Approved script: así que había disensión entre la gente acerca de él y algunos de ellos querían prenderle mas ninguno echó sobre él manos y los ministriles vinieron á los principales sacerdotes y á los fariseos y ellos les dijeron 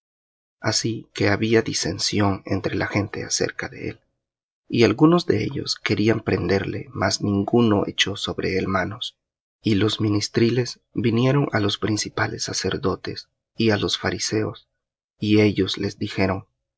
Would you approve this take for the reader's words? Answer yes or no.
yes